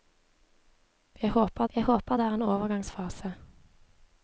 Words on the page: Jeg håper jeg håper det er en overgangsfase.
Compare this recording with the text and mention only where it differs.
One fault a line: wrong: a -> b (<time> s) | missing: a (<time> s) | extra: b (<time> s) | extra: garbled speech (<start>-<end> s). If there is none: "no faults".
no faults